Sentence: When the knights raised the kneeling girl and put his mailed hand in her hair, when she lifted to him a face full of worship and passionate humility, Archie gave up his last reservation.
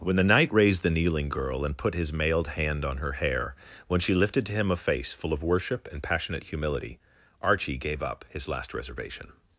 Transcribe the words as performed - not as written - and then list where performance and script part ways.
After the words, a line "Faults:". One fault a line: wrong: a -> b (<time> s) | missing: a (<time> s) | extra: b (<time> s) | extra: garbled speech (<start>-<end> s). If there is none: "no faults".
When the knight raised the kneeling girl and put his mailed hand on her hair, when she lifted to him a face full of worship and passionate humility, Archie gave up his last reservation.
Faults:
wrong: knights -> knight (0.2 s)
wrong: in -> on (2.8 s)